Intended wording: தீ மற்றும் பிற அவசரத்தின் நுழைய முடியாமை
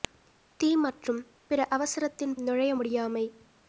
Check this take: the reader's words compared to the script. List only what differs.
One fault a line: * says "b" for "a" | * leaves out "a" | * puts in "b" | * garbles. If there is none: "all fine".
all fine